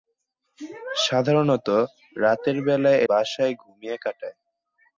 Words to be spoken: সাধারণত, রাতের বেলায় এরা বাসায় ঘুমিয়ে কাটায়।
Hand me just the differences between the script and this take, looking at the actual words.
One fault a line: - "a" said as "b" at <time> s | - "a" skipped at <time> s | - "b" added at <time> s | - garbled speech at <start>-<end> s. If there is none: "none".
- "এরা" skipped at 3.0 s